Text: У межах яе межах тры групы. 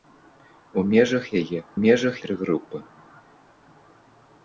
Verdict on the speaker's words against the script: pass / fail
pass